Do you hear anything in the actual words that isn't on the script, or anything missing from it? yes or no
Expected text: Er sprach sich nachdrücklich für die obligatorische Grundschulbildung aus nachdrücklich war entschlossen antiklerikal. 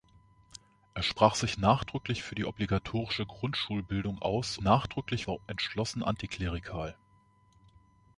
no